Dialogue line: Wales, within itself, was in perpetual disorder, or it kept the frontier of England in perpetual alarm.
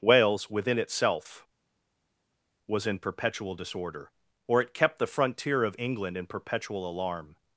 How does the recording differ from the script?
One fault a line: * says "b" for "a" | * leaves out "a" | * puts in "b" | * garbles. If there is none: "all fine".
all fine